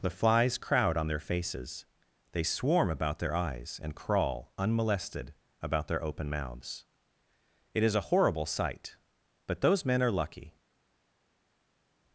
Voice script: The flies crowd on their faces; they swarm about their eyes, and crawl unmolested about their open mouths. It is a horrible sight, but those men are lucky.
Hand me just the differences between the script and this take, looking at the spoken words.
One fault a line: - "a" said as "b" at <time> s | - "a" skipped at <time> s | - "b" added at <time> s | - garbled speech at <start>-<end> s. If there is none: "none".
none